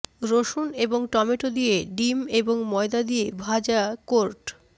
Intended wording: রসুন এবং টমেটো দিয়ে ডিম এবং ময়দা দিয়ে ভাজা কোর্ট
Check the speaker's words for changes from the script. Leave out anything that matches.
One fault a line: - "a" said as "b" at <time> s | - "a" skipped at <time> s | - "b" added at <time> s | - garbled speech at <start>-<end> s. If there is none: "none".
none